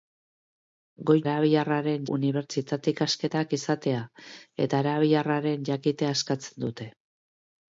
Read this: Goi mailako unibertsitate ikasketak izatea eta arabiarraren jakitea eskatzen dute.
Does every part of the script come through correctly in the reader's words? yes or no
no